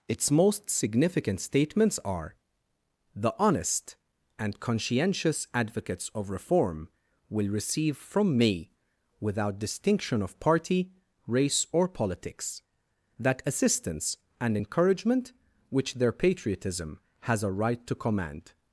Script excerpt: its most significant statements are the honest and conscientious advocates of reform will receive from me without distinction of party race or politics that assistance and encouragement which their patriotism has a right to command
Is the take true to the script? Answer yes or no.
yes